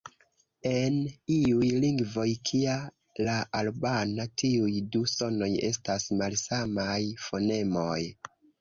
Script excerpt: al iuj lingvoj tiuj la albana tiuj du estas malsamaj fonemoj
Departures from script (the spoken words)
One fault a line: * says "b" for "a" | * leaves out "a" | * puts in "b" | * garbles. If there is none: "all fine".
* says "en" for "al"
* says "kia" for "tiuj"
* puts in "sonoj"